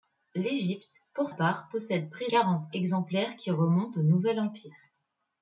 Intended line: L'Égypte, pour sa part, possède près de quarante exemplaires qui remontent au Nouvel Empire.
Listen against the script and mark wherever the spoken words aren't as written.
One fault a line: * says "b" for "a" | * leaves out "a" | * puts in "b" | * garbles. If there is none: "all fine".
* leaves out "sa"
* leaves out "de"